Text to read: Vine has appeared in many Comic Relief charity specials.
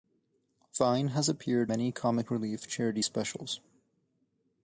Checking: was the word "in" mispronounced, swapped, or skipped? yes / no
yes